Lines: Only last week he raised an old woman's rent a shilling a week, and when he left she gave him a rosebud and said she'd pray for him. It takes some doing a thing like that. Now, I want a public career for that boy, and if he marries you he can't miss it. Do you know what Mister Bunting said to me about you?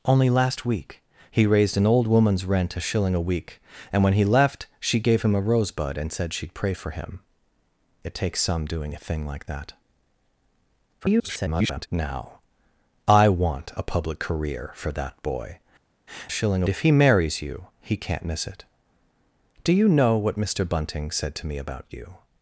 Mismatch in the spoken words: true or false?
true